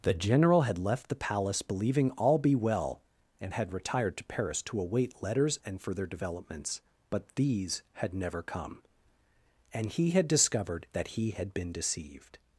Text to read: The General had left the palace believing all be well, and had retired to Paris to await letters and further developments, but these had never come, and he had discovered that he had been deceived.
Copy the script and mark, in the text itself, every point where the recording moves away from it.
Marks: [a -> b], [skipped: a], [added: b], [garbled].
The General had left the palace believing all be well, and had retired to Paris to await letters and further developments, but these had never come, and he had discovered that he had been deceived.